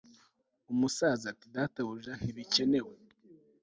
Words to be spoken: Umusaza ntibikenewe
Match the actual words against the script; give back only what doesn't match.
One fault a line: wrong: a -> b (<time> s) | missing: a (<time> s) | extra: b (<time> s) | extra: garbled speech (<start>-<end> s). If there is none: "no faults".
extra: ati Databuja (1.3 s)